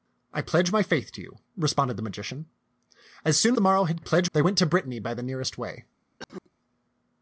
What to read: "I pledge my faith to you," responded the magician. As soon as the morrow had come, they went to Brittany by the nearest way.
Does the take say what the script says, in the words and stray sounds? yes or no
no